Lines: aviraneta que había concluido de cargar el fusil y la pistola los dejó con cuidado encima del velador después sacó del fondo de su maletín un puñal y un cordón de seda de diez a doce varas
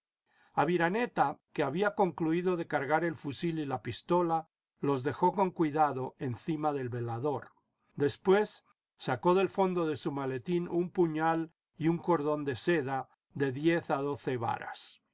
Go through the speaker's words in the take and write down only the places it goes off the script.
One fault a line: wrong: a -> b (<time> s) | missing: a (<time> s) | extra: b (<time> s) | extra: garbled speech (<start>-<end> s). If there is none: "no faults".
no faults